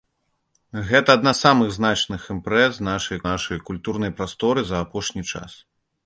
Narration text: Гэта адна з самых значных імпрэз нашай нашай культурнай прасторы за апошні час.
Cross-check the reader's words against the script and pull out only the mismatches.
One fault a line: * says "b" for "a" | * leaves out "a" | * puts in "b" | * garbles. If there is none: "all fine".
all fine